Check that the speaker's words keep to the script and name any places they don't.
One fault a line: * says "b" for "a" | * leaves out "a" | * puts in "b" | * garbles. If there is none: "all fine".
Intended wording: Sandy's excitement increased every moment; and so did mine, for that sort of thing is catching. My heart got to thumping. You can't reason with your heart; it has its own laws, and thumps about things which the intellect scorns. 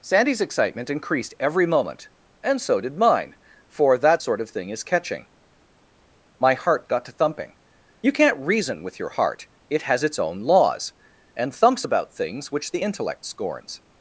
all fine